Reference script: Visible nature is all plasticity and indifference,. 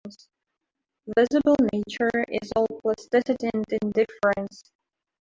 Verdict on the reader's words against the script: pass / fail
pass